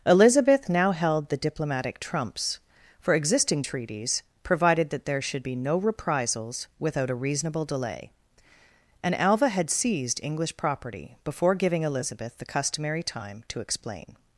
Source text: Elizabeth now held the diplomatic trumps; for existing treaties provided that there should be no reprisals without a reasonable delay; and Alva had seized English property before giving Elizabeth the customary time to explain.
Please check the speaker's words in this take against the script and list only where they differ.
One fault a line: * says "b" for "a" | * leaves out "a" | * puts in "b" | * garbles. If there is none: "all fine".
all fine